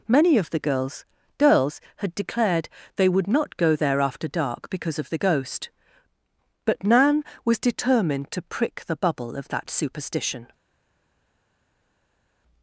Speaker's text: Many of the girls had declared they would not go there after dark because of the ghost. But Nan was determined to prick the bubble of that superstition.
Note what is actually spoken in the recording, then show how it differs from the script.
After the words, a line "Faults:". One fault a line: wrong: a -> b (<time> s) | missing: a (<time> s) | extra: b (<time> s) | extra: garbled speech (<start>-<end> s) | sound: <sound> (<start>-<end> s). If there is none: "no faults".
Many of the girls girls had declared they would not go there after dark because of the ghost. But Nan was determined to prick the bubble of that superstition.
Faults:
extra: girls (1.4 s)